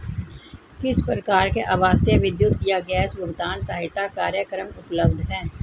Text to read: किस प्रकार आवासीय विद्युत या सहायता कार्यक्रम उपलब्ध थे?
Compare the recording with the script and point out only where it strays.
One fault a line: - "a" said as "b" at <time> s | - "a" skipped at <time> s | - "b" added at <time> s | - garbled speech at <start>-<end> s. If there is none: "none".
- "के" added at 1.5 s
- "गैस भुगतान" added at 2.9 s
- "थे" said as "हैं" at 5.3 s